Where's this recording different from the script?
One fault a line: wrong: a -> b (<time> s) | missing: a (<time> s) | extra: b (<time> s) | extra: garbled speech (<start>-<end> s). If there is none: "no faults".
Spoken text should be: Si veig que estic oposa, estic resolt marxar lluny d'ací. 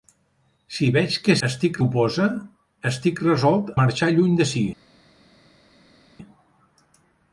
no faults